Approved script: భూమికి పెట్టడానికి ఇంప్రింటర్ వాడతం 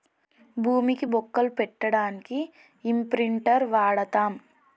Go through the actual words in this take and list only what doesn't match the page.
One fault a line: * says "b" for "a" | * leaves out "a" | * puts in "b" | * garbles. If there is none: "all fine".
* puts in "బొక్కలు"